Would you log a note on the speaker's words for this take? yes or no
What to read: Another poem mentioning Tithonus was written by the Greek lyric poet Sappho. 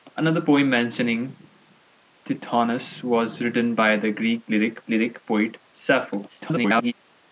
yes